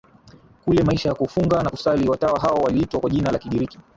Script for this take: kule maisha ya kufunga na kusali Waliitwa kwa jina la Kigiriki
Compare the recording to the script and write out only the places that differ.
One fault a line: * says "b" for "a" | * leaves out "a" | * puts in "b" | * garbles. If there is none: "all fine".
* puts in "Watawa hao"